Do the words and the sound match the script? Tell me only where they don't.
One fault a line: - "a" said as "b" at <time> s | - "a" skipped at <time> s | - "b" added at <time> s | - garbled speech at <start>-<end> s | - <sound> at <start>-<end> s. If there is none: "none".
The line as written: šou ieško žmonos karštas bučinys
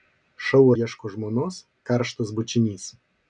none